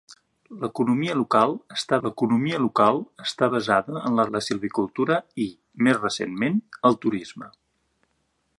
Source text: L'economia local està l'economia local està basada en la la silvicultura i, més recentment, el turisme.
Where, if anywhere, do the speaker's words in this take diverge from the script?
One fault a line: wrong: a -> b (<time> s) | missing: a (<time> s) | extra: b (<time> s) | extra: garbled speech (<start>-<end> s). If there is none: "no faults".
no faults